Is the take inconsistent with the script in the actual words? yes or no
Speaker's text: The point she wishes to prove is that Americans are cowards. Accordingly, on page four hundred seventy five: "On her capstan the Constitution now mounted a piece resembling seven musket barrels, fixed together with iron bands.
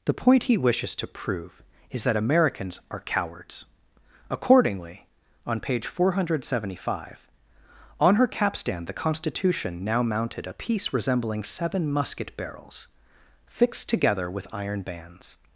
yes